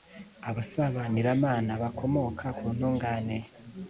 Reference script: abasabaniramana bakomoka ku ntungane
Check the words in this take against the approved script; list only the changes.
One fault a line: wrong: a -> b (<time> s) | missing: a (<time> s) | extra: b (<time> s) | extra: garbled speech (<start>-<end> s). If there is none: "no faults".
no faults